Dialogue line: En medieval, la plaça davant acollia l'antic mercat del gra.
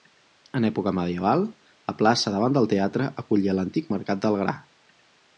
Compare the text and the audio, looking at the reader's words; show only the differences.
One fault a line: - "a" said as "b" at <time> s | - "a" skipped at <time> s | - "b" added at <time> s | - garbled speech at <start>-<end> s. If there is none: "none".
- "època" added at 0.7 s
- "del teatre" added at 2.5 s